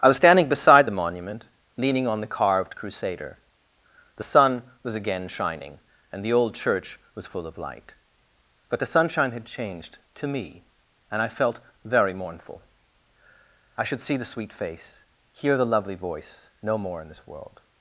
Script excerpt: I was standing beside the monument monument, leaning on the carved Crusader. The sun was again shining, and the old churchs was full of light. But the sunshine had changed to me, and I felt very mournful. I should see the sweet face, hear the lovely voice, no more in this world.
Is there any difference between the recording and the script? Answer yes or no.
yes